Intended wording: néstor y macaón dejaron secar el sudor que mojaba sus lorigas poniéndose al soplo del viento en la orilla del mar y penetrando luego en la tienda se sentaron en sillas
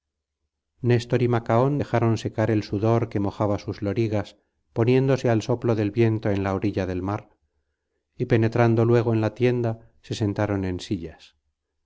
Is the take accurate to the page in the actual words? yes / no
yes